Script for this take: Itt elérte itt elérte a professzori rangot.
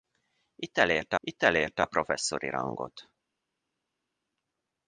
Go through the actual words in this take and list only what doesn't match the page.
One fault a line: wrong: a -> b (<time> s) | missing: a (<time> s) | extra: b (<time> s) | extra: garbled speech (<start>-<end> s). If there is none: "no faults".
no faults